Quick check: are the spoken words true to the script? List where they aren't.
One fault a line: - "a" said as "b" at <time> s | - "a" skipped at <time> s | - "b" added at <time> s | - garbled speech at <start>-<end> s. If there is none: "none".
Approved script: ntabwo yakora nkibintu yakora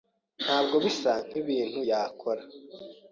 - "yakora" said as "bisa" at 0.8 s